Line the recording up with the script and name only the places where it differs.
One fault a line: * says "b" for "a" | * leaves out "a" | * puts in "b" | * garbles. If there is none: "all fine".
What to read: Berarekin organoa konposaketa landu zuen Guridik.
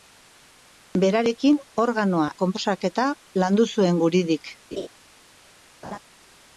all fine